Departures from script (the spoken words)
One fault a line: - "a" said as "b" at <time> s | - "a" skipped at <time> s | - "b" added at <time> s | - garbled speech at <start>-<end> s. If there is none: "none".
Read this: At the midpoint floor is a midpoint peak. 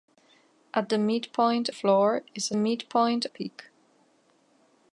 none